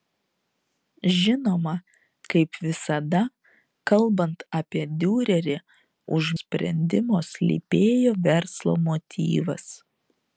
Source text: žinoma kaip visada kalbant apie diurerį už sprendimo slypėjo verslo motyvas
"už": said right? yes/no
yes